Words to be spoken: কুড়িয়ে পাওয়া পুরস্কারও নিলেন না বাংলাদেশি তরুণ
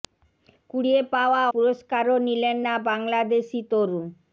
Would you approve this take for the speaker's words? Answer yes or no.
yes